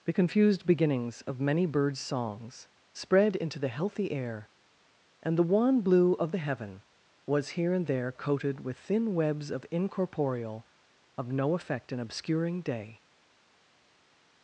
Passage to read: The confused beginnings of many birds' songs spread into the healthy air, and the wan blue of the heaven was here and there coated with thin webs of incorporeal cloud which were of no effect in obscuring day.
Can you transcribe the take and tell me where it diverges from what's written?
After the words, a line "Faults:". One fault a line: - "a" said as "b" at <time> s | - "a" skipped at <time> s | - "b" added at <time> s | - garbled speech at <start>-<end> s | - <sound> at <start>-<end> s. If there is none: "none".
The confused beginnings of many birds' songs spread into the healthy air, and the wan blue of the heaven was here and there coated with thin webs of incorporeal of no effect in obscuring day.
Faults:
- "cloud which were" skipped at 10.7 s